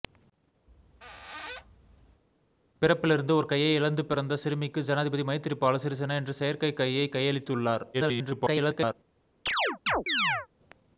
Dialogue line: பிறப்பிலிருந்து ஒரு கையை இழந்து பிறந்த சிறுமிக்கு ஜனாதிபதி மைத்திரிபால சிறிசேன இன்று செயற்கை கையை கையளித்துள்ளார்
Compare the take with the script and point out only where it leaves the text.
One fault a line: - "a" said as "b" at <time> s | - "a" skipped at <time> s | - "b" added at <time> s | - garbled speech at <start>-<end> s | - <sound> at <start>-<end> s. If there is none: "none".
- squeak at 0.7-2.2 s
- garbled speech at 7.9-8.9 s
- chirp at 9.5-10.5 s